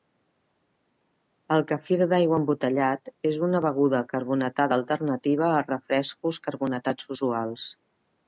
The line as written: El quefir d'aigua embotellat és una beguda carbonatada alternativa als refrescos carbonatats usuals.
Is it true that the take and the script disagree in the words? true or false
false